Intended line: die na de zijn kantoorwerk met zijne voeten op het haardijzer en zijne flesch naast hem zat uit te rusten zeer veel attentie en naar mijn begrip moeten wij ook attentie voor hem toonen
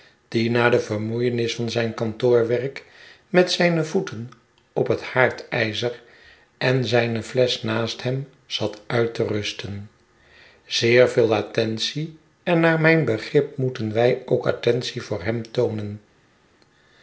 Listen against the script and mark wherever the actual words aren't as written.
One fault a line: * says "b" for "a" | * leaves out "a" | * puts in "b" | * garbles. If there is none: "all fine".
* puts in "vermoeienis van"